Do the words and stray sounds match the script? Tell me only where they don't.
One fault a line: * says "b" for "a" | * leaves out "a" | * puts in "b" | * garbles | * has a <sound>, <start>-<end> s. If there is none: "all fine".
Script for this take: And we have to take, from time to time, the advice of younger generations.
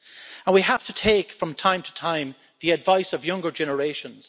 all fine